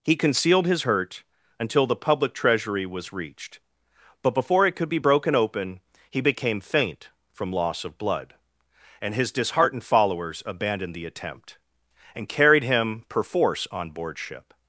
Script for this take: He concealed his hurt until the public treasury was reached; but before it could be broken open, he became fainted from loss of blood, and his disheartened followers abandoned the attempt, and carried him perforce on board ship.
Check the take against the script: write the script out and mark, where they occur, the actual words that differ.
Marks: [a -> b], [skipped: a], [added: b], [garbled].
He concealed his hurt until the public treasury was reached; but before it could be broken open, he became [fainted -> faint] from loss of blood, and his disheartened followers abandoned the attempt, and carried him perforce on board ship.